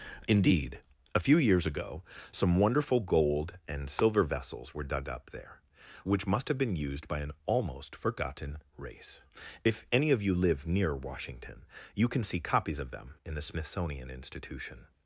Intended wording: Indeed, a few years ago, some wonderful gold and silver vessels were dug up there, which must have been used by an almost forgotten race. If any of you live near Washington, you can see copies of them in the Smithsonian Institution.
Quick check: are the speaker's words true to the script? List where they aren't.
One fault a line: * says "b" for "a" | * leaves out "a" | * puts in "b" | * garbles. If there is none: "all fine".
all fine